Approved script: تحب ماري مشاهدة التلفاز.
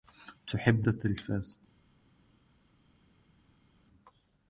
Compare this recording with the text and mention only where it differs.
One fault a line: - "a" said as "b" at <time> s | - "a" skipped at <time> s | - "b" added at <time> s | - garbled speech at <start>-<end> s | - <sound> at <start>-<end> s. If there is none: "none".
- "ماري مشاهدة" skipped at 0.9 s